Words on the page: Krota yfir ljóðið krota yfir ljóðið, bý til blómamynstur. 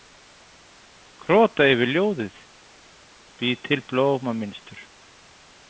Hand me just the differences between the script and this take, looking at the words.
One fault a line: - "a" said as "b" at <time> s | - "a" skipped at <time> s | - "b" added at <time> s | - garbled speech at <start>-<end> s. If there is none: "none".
- "krota yfir ljóðið" skipped at 2.4 s